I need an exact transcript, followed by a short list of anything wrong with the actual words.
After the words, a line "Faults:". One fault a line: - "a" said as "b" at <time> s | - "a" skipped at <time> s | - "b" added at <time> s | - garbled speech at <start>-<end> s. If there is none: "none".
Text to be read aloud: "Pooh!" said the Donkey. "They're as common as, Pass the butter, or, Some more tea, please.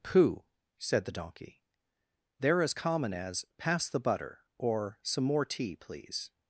"Pooh!" said the Donkey. "They're as common as, Pass the butter, or, Some more tea, please.
Faults:
none